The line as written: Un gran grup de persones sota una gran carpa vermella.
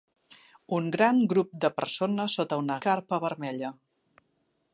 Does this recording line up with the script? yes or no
no